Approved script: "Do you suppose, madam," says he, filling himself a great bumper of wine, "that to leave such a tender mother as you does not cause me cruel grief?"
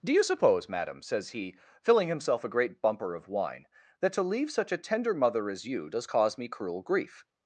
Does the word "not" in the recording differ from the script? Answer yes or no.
yes